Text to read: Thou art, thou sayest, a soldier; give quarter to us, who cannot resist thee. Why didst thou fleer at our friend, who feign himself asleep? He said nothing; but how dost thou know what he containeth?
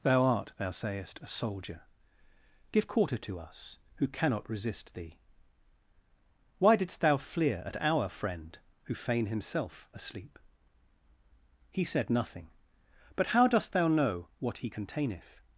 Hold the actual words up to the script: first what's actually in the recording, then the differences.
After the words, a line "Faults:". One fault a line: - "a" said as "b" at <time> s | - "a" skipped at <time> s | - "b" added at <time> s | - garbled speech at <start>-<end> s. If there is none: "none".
Thou art, thou sayest, a soldier; give quarter to us, who cannot resist thee. Why didst thou fleer at our friend, who feign himself asleep? He said nothing; but how dost thou know what he containeth?
Faults:
none